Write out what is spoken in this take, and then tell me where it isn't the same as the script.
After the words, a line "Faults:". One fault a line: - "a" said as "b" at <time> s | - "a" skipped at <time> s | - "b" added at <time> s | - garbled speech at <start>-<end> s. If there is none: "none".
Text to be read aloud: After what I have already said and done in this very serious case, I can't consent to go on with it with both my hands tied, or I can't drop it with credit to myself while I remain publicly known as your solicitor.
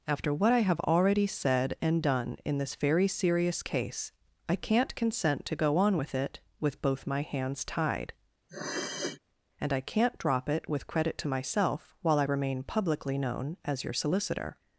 After what I have already said and done in this very serious case, I can't consent to go on with it with both my hands tied, and I can't drop it with credit to myself while I remain publicly known as your solicitor.
Faults:
- "or" said as "and" at 9.6 s